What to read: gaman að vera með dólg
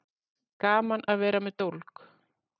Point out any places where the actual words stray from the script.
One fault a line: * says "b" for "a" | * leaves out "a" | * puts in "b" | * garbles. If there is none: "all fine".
all fine